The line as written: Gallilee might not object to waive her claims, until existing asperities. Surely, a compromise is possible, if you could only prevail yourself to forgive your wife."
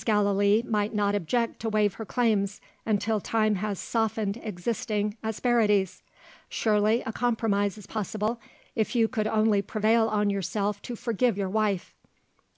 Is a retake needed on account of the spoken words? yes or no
yes